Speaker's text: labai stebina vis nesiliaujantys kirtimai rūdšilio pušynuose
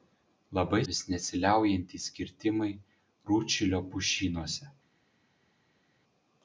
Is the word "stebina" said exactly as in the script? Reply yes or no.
no